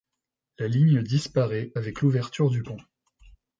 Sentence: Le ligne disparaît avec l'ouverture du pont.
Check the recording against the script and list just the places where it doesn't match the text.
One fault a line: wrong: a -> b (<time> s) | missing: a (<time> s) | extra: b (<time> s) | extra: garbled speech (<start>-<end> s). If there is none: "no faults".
wrong: Le -> La (0.6 s)